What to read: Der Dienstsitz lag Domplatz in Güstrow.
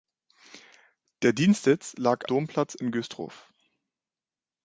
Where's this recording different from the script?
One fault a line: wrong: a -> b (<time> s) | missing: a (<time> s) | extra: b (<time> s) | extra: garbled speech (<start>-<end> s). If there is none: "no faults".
no faults